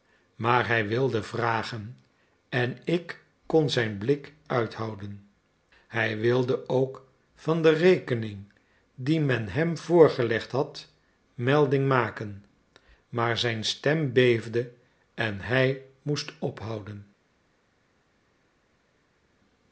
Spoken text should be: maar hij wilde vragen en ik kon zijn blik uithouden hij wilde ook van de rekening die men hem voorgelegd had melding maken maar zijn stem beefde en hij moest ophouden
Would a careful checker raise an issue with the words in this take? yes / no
no